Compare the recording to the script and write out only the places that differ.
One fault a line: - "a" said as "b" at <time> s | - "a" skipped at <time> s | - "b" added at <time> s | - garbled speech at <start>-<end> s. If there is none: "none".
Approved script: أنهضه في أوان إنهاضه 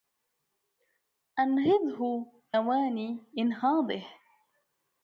- "في" skipped at 2.3 s